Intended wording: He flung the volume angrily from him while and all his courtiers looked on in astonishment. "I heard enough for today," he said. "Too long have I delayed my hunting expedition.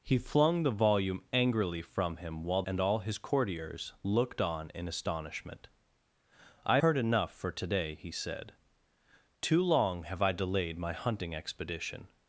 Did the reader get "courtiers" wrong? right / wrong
right